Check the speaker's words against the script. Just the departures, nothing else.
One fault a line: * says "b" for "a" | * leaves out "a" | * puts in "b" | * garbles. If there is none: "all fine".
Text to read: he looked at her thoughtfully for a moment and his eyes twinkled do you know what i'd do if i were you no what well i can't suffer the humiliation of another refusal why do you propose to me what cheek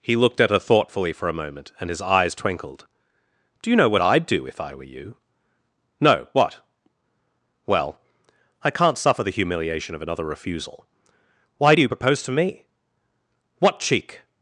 all fine